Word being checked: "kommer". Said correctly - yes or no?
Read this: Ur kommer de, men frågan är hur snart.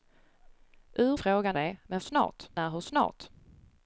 no